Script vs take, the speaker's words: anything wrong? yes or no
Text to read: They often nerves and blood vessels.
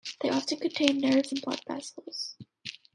yes